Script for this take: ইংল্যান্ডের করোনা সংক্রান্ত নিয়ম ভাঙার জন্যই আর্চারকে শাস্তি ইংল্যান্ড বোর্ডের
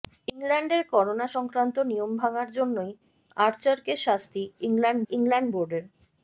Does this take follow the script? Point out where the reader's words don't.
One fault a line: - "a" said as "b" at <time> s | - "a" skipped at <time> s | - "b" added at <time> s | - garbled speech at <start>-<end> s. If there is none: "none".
- "ইংল্যান্ড" added at 5.1 s